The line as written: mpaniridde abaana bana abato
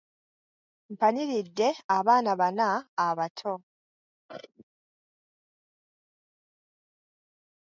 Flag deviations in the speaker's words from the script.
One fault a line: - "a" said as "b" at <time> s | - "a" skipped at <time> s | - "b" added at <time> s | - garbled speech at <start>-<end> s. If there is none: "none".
none